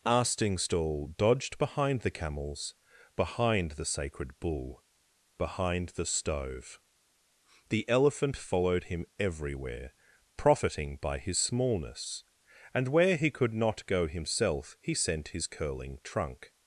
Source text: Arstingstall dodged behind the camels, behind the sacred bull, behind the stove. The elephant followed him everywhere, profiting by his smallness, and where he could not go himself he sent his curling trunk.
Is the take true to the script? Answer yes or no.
yes